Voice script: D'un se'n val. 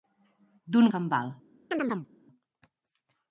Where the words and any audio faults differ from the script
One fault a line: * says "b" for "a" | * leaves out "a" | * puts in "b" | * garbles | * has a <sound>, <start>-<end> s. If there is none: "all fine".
* has a chirp, 1.7-2.1 s